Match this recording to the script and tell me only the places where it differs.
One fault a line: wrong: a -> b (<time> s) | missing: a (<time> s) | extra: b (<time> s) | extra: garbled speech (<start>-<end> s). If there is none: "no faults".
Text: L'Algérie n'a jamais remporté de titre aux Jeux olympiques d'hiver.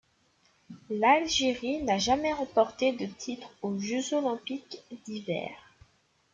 no faults